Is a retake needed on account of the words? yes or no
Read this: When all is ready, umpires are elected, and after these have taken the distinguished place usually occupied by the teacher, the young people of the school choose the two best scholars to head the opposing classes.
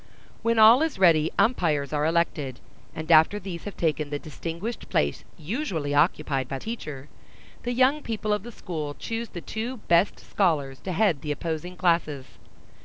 yes